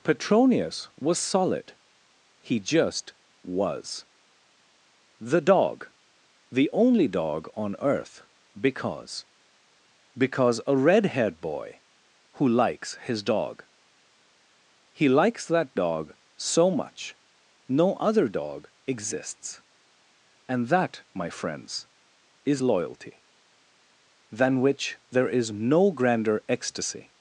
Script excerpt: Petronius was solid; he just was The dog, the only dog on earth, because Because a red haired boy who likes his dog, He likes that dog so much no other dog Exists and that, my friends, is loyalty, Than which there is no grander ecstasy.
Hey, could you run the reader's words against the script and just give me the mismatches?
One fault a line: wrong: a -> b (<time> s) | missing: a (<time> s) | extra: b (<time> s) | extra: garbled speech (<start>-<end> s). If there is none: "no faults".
no faults